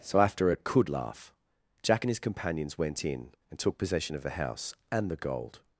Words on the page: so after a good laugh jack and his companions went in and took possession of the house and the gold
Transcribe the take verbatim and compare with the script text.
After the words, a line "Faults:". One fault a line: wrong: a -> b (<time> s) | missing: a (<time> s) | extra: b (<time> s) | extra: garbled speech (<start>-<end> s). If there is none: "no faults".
so after a could laugh jack and his companions went in and took possession of the house and the gold
Faults:
wrong: good -> could (0.5 s)